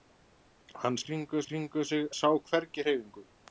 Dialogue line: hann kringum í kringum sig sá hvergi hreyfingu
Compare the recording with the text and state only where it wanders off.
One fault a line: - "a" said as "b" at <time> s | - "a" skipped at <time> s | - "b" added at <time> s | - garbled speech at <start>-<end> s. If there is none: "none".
none